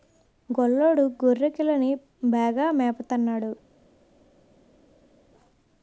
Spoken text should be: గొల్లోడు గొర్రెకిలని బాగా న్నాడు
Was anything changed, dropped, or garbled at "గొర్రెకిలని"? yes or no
no